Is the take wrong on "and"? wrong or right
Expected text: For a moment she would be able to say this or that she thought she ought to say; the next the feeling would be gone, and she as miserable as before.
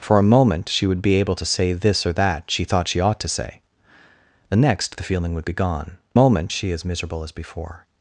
wrong